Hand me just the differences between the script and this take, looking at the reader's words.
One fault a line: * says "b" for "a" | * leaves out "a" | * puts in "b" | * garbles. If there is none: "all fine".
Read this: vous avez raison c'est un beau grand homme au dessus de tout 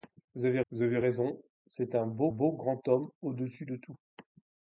* puts in "vous avez"
* puts in "beau"